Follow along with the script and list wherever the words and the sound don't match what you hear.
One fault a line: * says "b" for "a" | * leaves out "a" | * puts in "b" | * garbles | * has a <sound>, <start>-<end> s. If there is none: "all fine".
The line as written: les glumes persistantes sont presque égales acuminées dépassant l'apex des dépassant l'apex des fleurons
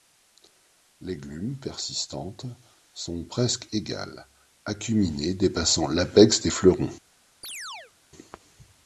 * leaves out "dépassant l'apex des"
* has a chirp, 7.4-7.9 s